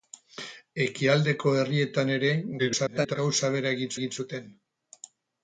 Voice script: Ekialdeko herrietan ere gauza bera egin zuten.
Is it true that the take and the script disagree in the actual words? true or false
true